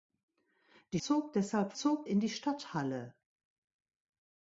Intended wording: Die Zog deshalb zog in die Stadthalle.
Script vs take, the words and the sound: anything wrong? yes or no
no